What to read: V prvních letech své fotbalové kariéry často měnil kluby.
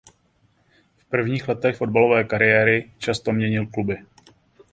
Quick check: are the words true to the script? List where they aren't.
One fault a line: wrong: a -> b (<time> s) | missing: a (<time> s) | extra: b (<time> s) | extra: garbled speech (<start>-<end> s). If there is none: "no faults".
missing: své (1.8 s)